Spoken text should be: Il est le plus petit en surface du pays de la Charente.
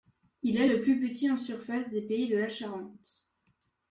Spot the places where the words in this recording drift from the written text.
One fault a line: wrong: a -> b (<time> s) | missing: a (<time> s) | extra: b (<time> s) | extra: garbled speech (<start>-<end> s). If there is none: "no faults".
wrong: du -> des (1.9 s)